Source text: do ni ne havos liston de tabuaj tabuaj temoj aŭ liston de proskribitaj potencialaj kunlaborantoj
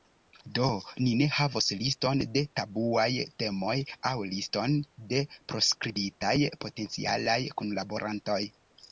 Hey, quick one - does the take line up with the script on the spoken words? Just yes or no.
no